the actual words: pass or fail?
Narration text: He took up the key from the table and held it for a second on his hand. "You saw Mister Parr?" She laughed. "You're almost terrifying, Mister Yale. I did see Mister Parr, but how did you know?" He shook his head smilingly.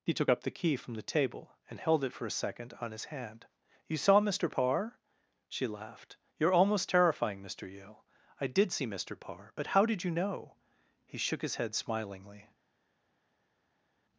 pass